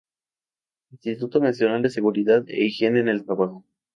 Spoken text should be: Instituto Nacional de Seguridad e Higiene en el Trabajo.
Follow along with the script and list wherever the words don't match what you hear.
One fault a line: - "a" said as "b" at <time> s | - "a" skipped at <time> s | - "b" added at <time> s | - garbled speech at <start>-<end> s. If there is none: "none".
none